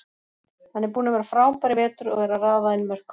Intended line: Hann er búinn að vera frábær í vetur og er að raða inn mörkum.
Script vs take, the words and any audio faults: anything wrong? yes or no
no